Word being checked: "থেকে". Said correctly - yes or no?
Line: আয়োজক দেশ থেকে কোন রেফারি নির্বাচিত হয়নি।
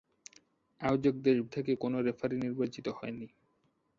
yes